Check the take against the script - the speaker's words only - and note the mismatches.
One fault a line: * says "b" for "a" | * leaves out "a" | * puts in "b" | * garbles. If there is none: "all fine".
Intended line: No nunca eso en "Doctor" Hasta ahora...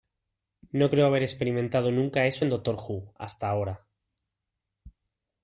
* puts in "creo haber experimentado"
* puts in "Who"